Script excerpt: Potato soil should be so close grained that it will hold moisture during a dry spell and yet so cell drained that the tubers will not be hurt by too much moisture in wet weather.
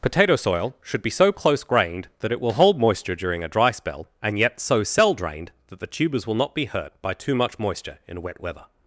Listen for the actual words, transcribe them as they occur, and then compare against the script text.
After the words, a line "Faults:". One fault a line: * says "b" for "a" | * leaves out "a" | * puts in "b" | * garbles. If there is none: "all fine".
Potato soil should be so close grained that it will hold moisture during a dry spell and yet so cell drained that the tubers will not be hurt by too much moisture in wet weather.
Faults:
all fine